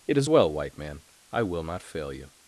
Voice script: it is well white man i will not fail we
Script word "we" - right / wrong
wrong